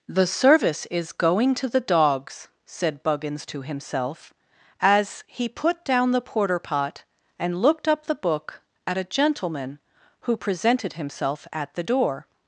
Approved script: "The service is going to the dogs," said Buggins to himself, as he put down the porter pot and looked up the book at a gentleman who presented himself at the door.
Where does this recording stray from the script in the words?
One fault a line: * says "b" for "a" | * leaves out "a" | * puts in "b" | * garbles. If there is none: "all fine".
all fine